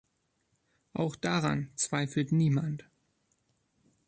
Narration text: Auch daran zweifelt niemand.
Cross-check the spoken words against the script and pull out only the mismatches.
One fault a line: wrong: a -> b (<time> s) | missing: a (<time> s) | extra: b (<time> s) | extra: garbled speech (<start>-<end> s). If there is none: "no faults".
no faults